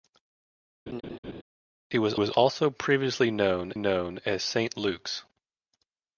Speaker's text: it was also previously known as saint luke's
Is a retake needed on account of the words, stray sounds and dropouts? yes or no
yes